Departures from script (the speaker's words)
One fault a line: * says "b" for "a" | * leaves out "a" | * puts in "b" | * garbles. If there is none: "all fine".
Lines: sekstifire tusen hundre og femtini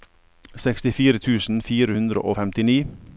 * puts in "fire"